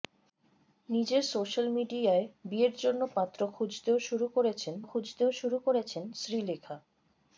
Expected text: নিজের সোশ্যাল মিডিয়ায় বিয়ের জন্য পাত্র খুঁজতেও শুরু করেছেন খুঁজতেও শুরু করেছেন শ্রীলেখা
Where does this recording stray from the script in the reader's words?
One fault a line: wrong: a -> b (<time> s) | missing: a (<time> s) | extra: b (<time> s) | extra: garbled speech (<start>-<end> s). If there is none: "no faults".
no faults